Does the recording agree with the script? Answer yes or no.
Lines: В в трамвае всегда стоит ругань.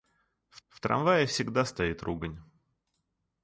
yes